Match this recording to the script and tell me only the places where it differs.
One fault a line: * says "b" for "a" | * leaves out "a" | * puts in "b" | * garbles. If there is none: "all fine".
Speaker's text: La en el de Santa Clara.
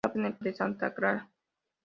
all fine